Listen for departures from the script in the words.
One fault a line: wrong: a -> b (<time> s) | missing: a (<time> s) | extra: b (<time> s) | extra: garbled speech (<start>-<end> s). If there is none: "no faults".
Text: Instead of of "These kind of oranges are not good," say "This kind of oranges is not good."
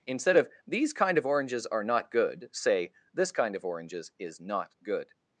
missing: of (0.5 s)